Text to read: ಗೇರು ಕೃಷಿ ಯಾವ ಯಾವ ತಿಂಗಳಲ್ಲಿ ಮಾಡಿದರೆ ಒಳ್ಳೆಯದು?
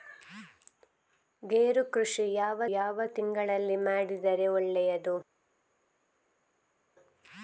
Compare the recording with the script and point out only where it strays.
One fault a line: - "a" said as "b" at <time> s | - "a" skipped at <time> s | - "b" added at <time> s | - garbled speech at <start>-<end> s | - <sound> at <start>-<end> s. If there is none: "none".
none